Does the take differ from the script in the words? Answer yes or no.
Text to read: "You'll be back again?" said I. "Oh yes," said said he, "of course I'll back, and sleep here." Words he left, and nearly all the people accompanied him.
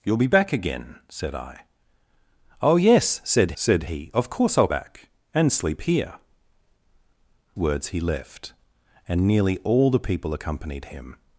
no